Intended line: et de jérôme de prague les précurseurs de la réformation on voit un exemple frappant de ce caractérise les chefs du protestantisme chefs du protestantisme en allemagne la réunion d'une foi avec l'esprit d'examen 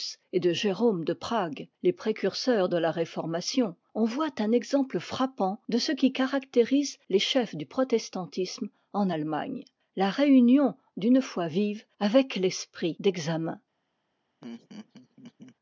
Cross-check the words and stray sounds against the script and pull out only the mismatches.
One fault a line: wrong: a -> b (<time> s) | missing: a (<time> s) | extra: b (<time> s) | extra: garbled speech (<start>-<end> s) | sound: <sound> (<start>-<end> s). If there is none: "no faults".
extra: qui (5.9 s)
missing: chefs du protestantisme (8.7 s)
extra: vive (11.5 s)
sound: laugh (14.4-15.6 s)